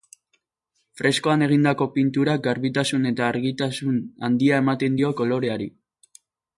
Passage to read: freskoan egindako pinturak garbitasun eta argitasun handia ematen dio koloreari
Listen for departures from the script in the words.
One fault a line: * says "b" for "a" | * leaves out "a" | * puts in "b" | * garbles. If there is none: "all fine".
all fine